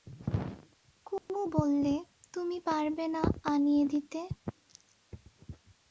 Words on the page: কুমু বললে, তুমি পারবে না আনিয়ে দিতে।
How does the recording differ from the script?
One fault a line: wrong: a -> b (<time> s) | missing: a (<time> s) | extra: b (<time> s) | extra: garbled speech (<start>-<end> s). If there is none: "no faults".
no faults